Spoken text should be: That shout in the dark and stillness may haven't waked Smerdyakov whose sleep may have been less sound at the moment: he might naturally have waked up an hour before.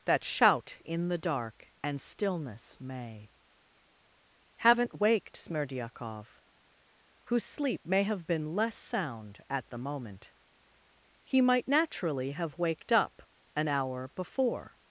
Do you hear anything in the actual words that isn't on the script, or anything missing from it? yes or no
no